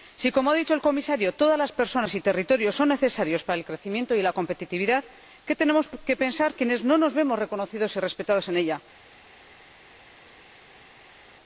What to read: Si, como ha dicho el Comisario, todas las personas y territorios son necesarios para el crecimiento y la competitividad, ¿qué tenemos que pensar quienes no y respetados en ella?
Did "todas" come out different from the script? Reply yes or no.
no